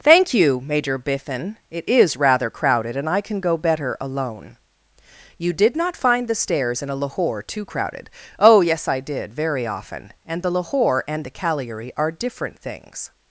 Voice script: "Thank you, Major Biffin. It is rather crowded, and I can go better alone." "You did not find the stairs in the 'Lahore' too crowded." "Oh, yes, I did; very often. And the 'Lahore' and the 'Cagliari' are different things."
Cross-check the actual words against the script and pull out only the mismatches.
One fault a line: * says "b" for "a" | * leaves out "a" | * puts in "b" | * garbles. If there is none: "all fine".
* says "a" for "the"